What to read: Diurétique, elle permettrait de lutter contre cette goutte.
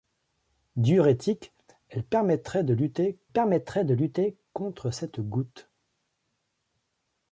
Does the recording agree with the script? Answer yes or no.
no